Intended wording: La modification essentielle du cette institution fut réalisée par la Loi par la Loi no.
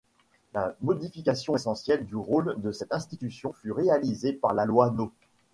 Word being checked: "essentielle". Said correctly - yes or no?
yes